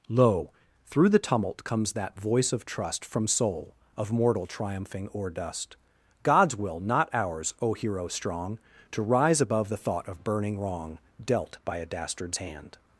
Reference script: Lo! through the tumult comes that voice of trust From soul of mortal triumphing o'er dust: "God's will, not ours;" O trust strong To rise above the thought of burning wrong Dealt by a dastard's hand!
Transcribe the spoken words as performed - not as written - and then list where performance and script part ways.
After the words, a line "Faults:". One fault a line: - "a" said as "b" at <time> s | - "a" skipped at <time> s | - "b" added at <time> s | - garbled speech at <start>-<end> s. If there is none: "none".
Lo! through the tumult comes that voice of trust From soul of mortal triumphing o'er dust: "God's will, not ours;" O hero strong To rise above the thought of burning wrong Dealt by a dastard's hand!
Faults:
- "trust" said as "hero" at 7.8 s